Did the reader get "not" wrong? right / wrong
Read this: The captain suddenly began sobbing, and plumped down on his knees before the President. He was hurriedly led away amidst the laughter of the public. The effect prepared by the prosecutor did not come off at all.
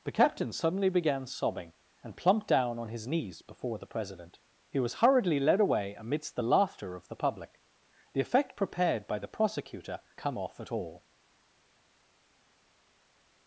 wrong